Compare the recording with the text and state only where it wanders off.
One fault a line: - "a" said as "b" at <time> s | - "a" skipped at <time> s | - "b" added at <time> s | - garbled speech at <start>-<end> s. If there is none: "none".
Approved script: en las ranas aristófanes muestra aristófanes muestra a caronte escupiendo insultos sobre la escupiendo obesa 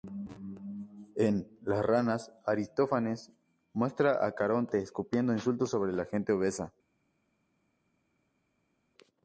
- "aristófanes muestra" skipped at 4.2 s
- "escupiendo" said as "gente" at 6.0 s